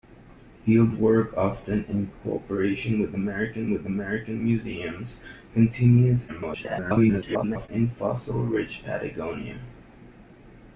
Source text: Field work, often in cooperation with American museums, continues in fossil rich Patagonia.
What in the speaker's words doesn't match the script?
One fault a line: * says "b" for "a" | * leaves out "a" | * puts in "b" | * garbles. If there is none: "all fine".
* puts in "with American"
* garbles